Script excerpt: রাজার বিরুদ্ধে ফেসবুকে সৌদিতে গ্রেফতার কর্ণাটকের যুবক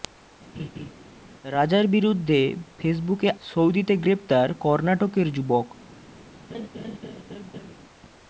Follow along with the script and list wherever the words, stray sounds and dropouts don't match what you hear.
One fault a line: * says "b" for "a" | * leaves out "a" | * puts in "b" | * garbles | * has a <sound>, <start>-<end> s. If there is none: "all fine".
* has a laugh, 0.5-0.9 s
* has a laugh, 6.5-7.8 s